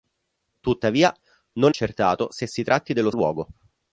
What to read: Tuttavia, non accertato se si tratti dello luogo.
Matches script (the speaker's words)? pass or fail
pass